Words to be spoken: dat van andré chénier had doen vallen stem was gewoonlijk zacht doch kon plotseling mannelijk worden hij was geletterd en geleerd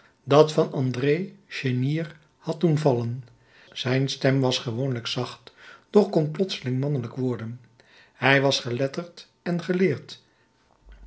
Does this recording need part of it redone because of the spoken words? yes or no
yes